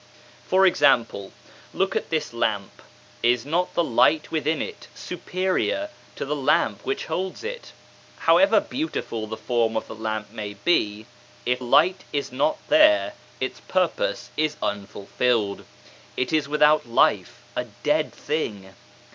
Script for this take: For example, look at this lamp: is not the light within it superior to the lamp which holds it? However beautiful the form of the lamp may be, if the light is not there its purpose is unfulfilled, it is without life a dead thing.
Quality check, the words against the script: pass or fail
fail